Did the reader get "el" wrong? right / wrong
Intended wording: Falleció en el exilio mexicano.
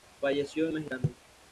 wrong